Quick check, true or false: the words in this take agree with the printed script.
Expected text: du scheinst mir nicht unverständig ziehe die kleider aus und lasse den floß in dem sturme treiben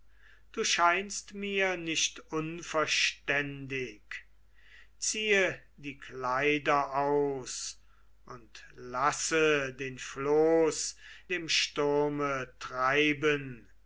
false